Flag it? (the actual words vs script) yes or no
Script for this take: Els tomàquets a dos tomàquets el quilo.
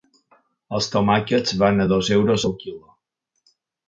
yes